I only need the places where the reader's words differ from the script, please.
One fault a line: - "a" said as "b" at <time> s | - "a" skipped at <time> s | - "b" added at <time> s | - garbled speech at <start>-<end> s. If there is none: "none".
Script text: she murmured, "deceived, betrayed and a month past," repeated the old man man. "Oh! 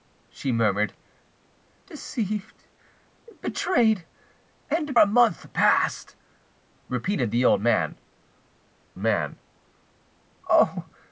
none